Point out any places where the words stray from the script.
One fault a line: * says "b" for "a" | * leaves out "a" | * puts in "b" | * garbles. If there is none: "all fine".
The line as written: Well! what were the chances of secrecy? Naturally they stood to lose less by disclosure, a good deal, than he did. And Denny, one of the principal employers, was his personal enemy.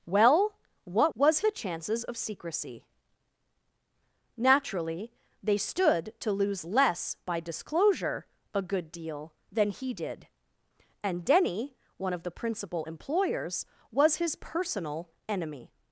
* says "was" for "were"